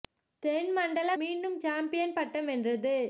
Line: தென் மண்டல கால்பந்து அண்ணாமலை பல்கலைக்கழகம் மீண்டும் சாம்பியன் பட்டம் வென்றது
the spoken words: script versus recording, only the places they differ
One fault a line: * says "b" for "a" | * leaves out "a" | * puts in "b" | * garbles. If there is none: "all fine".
* leaves out "கால்பந்து அண்ணாமலை பல்கலைக்கழகம்"